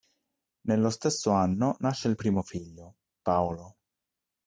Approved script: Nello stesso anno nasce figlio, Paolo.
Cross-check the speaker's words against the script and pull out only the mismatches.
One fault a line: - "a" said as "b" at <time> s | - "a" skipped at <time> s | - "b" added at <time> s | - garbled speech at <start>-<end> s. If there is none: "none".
- "il primo" added at 2.1 s